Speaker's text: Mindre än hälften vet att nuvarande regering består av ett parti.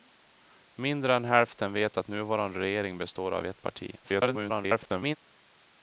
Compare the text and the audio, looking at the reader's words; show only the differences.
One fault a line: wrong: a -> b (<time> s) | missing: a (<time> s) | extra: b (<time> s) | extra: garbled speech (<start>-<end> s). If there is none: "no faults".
extra: garbled speech (4.0-5.2 s)